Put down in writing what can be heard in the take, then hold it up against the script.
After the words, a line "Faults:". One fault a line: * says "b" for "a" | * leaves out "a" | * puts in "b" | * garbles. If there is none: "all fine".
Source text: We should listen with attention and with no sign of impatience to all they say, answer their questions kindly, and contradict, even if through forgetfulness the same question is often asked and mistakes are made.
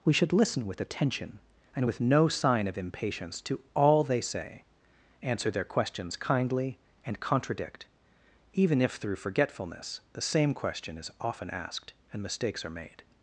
We should listen with attention and with no sign of impatience to all they say, answer their questions kindly, and contradict, even if through forgetfulness the same question is often asked and mistakes are made.
Faults:
all fine